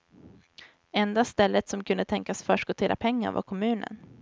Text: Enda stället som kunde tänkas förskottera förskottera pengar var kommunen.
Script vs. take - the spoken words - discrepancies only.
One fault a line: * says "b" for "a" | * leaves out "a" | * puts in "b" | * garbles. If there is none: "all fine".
* leaves out "förskottera"